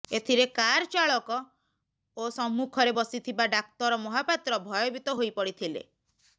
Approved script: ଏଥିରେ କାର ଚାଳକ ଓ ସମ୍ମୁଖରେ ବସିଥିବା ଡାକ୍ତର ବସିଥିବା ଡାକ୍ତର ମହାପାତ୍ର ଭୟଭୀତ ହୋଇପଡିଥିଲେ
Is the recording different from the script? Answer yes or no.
yes